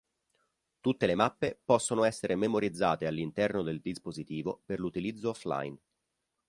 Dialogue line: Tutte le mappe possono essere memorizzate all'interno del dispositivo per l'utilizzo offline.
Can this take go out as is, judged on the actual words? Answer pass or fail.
pass